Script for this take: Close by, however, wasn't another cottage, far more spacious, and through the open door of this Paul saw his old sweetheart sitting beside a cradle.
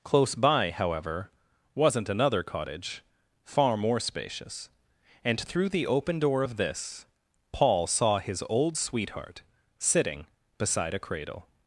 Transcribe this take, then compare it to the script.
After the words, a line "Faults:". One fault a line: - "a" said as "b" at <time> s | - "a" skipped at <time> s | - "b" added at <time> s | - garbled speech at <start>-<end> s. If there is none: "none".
Close by, however, wasn't another cottage, far more spacious, and through the open door of this Paul saw his old sweetheart sitting beside a cradle.
Faults:
none